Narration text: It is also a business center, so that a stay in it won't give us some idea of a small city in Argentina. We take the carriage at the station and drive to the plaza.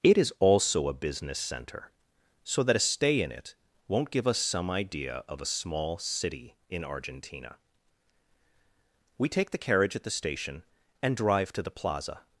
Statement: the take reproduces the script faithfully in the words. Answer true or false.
true